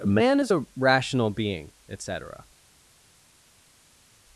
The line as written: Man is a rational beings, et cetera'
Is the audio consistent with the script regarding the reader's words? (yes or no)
no